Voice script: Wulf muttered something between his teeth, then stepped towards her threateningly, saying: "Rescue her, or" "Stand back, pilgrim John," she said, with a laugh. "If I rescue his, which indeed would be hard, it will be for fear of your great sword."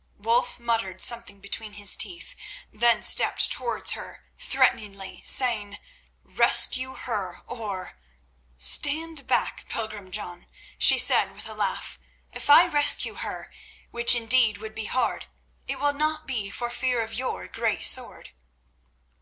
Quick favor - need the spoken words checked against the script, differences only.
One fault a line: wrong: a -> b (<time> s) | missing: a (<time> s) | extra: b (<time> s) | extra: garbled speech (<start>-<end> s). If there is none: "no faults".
wrong: his -> her (13.1 s)
extra: not (15.9 s)